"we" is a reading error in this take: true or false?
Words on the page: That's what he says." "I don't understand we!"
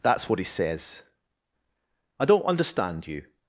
true